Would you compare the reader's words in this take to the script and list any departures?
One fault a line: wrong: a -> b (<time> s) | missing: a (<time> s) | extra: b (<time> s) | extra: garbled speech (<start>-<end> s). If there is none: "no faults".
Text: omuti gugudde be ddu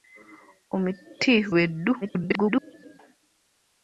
missing: gugudde (1.3 s)
extra: garbled speech (2.0-3.0 s)